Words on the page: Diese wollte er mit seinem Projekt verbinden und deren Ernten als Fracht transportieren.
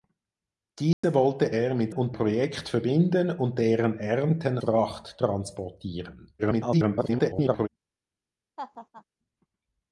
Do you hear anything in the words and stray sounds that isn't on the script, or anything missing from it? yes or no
yes